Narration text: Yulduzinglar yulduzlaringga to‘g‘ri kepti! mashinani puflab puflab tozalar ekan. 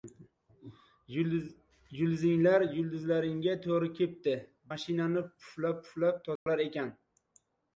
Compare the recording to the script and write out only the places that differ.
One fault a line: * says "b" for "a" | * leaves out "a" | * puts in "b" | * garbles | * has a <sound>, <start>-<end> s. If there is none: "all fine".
* has a dropout, 6.4-6.5 s